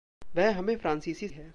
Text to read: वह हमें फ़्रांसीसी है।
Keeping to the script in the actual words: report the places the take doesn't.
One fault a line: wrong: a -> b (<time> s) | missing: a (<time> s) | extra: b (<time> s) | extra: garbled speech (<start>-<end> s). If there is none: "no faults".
no faults